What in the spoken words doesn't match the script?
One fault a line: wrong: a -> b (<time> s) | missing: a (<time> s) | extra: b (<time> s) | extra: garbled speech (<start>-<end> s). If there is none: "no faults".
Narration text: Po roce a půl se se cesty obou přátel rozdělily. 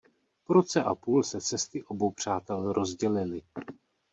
missing: se (1.4 s)